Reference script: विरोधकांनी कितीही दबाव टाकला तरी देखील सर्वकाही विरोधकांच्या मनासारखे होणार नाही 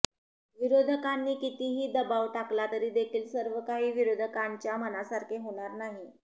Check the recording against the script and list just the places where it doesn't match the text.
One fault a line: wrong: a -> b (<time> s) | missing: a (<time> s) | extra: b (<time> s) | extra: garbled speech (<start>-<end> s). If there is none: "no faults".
no faults